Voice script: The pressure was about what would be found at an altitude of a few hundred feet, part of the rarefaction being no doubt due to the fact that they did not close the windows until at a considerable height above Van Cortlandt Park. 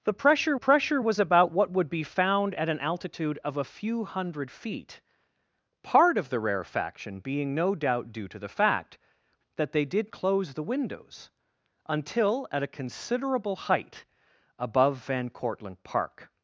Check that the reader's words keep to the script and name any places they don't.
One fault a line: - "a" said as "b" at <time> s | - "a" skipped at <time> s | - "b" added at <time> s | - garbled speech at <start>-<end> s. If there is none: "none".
- "pressure" added at 0.6 s
- "not" skipped at 10.1 s